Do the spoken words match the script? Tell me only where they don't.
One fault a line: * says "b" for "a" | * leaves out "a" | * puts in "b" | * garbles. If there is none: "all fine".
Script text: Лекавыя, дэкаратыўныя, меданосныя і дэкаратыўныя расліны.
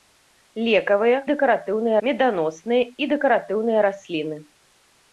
all fine